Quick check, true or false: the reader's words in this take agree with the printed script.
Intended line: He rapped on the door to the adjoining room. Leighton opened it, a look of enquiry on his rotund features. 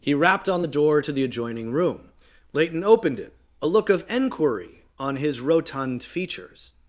true